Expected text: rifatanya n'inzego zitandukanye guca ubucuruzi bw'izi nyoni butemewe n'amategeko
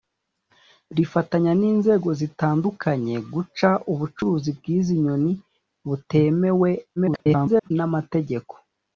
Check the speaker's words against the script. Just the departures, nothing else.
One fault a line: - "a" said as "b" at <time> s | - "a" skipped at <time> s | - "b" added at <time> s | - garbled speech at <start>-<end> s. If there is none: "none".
- garbled speech at 7.0-7.7 s